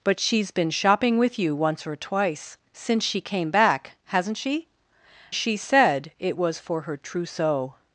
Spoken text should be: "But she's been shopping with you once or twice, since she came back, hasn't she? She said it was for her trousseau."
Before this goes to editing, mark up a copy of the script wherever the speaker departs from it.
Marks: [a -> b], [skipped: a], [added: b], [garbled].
"But she's been shopping with you once or twice, since she came back, hasn't she? She said it was for her trousseau."